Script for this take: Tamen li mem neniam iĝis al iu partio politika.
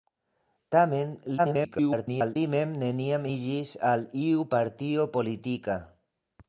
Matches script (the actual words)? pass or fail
fail